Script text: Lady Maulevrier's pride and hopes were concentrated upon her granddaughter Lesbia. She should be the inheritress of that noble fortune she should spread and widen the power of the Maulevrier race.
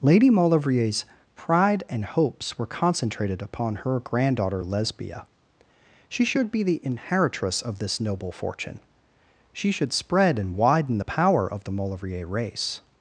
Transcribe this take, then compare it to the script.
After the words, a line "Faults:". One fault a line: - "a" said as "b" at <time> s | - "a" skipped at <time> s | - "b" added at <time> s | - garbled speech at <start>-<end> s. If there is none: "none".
Lady Maulevrier's pride and hopes were concentrated upon her granddaughter Lesbia. She should be the inheritress of this noble fortune she should spread and widen the power of the Maulevrier race.
Faults:
- "that" said as "this" at 7.8 s